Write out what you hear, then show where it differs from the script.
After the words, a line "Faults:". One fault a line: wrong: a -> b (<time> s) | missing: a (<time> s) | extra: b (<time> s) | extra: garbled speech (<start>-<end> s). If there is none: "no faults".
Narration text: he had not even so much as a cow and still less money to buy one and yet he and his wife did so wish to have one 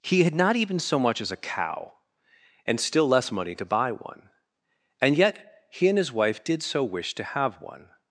he had not even so much as a cow and still less money to buy one and yet he and his wife did so wish to have one
Faults:
no faults